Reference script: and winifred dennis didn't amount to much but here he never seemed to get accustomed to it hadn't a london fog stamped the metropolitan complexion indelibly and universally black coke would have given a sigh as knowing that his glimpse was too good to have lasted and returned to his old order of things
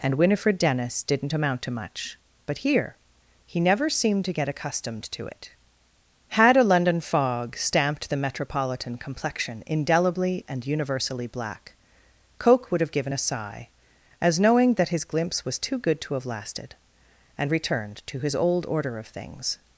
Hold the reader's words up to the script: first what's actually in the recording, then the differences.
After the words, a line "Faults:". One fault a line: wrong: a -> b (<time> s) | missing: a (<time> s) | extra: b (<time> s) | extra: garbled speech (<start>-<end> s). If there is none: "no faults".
and winifred dennis didn't amount to much but here he never seemed to get accustomed to it had a london fog stamped the metropolitan complexion indelibly and universally black coke would have given a sigh as knowing that his glimpse was too good to have lasted and returned to his old order of things
Faults:
wrong: hadn't -> had (6.3 s)